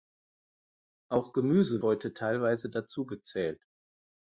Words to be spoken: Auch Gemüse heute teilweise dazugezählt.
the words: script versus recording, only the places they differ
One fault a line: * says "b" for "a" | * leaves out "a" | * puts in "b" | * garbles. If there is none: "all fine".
all fine